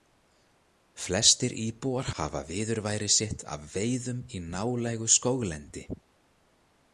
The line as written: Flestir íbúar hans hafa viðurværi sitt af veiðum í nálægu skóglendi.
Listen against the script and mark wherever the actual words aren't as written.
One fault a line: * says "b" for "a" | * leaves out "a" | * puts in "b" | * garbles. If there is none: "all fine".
* leaves out "hans"